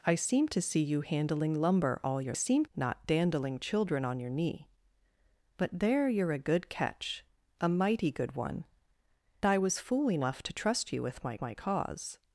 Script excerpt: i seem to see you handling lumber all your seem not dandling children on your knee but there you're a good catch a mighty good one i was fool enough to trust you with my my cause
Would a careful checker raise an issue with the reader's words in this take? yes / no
no